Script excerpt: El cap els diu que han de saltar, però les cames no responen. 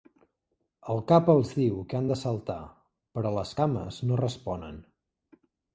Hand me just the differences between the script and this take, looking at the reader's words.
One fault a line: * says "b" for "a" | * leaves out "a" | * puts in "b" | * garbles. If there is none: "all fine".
all fine